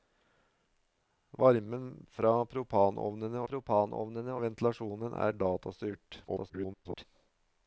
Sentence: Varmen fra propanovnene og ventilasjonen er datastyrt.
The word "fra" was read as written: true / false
true